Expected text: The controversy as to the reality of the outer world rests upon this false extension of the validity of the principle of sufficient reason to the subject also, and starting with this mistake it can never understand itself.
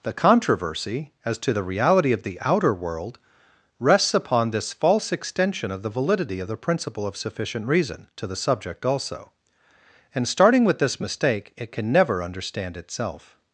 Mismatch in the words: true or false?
false